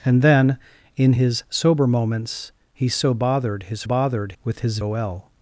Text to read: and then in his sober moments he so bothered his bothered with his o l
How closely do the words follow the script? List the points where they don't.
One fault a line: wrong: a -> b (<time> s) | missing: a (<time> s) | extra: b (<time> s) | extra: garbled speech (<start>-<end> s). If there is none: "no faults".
no faults